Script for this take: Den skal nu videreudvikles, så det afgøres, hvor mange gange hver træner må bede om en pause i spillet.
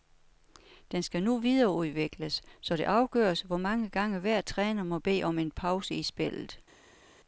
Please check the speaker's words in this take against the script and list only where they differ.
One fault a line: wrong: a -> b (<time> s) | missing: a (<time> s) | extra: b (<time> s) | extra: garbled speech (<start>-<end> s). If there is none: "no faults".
no faults